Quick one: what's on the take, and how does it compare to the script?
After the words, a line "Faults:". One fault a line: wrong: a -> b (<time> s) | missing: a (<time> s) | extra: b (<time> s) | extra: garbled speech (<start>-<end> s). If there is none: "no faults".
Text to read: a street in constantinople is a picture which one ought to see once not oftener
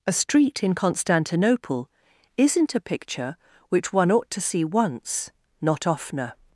a street in constantinople isn't a picture which one ought to see once not oftener
Faults:
wrong: is -> isn't (2.4 s)